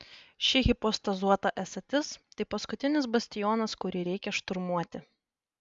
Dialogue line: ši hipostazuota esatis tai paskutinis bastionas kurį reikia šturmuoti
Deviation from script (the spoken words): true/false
false